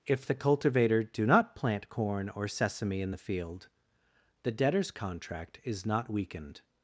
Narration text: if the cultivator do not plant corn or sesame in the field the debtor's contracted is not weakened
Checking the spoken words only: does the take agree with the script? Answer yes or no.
no